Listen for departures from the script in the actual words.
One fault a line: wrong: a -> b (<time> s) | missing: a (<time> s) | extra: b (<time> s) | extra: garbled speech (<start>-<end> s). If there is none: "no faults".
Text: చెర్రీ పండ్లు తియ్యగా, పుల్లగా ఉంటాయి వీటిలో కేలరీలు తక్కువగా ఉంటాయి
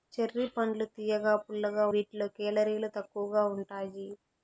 missing: ఉంటాయి (1.9 s)